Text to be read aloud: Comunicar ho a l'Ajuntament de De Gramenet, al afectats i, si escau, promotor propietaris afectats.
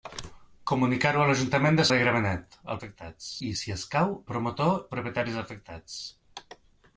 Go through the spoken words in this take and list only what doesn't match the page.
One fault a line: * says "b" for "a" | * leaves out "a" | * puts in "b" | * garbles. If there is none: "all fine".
all fine